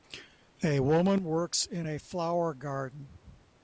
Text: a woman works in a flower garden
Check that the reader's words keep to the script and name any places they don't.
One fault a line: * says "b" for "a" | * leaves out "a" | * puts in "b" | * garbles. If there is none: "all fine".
all fine